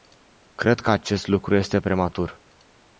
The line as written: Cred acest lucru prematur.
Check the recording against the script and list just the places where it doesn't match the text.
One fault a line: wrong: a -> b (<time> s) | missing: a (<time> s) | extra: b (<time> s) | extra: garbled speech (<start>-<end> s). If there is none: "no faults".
extra: că (0.8 s)
extra: este (1.5 s)